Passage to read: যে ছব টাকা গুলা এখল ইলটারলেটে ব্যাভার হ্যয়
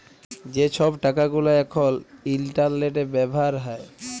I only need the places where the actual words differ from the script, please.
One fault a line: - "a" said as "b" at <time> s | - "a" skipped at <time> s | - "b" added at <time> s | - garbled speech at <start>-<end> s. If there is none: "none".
none